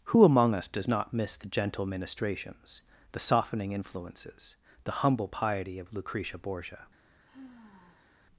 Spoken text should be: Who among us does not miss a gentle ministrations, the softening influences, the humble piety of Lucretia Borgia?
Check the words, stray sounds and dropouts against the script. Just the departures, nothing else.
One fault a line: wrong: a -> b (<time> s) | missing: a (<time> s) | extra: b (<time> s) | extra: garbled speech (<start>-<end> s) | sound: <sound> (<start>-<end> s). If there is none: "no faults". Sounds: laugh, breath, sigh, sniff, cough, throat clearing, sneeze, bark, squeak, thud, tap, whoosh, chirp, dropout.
wrong: a -> the (1.4 s)
sound: sigh (7.2-8.2 s)